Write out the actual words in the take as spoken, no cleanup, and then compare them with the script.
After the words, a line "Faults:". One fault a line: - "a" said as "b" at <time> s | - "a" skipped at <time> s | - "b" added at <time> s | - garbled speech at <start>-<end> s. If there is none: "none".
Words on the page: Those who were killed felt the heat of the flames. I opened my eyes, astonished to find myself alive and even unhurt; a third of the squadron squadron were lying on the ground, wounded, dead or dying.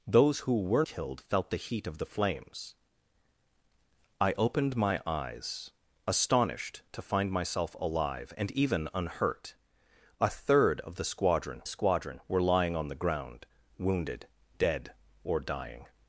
Those who were killed felt the heat of the flames. I opened my eyes, astonished to find myself alive and even unhurt; a third of the squadron squadron were lying on the ground, wounded, dead or dying.
Faults:
none